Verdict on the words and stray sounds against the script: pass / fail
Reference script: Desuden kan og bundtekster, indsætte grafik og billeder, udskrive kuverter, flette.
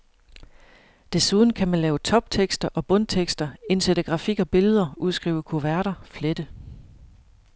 fail